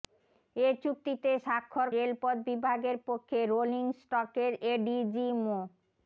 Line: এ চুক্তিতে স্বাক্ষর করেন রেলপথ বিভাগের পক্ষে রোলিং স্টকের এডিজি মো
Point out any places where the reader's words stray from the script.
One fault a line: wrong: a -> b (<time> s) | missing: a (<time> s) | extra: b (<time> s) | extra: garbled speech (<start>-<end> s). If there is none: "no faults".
missing: করেন (1.9 s)